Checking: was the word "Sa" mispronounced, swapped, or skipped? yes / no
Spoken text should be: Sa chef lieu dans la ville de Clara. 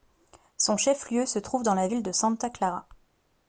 yes